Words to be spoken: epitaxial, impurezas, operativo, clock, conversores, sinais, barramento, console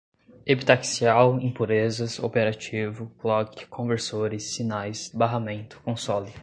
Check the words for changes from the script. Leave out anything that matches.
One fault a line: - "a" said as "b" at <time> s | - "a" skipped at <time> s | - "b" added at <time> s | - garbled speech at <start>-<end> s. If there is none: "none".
none